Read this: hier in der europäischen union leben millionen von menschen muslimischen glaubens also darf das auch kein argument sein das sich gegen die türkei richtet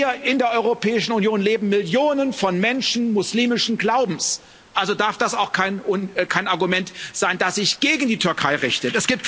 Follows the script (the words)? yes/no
yes